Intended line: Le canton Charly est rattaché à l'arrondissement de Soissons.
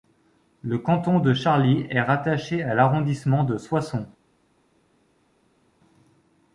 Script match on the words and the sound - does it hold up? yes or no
no